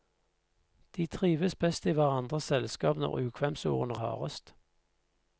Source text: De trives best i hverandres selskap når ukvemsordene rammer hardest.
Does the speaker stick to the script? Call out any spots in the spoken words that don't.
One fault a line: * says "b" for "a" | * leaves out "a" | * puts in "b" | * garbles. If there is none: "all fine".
* leaves out "rammer"